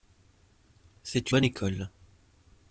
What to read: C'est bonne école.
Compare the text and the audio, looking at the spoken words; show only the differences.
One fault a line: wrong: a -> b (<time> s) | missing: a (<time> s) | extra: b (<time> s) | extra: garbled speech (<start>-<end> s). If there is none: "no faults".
no faults